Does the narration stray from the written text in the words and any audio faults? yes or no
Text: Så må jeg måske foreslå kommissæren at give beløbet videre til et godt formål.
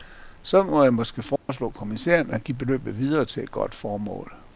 yes